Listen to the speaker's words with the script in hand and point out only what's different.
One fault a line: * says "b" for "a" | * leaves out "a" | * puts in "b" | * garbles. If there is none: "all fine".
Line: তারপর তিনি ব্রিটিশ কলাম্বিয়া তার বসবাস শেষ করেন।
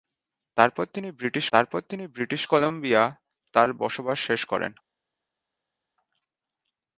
* puts in "তারপর তিনি ব্রিটিশ"